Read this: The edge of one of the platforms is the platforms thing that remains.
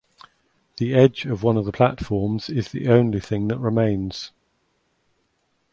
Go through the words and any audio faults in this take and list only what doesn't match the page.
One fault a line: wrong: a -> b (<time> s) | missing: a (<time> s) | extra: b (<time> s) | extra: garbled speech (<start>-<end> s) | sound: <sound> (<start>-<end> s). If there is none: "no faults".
wrong: platforms -> only (2.9 s)